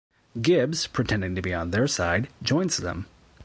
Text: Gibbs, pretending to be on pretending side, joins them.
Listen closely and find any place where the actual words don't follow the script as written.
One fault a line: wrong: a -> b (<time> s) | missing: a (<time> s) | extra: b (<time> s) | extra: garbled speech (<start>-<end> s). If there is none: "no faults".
wrong: pretending -> their (1.7 s)